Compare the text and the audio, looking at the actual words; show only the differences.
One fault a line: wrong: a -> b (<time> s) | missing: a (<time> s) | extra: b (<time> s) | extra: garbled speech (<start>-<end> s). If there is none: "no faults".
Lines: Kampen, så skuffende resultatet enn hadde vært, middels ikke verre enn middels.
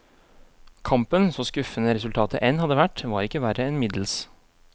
wrong: middels -> var (3.1 s)